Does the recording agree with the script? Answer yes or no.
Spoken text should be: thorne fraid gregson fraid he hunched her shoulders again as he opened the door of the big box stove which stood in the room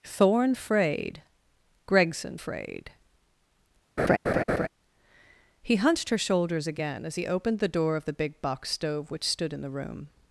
yes